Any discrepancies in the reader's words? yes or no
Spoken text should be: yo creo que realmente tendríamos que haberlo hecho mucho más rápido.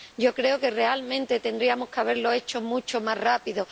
no